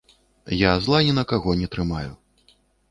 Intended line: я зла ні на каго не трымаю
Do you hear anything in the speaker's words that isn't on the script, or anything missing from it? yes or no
no